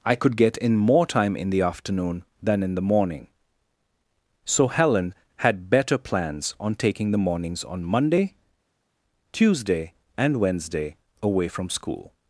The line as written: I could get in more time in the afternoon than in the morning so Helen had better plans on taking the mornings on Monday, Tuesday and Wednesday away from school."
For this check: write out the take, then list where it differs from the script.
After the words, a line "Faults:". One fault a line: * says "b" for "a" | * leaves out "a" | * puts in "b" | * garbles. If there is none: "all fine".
I could get in more time in the afternoon than in the morning so Helen had better plans on taking the mornings on Monday, Tuesday and Wednesday away from school."
Faults:
all fine